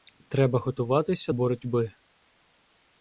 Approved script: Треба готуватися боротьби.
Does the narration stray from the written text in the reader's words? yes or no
no